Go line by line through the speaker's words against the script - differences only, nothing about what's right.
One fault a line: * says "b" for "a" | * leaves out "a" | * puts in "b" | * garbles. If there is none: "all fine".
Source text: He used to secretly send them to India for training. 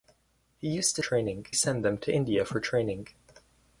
* says "training" for "secretly"